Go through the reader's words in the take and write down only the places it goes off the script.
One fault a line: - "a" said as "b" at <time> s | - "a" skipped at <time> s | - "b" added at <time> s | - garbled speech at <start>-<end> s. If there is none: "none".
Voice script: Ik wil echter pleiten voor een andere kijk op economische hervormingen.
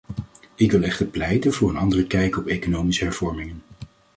none